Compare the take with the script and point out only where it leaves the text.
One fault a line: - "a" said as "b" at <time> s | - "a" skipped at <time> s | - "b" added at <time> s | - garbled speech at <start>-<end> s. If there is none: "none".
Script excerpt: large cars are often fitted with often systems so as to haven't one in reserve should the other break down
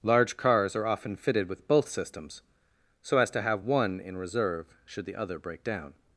- "often" said as "both" at 1.7 s
- "haven't" said as "have" at 3.4 s